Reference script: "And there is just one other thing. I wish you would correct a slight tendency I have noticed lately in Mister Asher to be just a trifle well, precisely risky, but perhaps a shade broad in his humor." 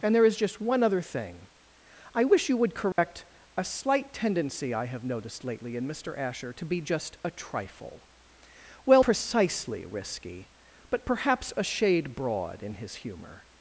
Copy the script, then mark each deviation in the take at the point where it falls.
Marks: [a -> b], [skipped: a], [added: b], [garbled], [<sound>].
"And there is just one other thing. I wish you would correct [dropout] a slight tendency I have noticed lately in Mister Asher to be just a trifle well, precisely risky, but perhaps a shade broad in his humor."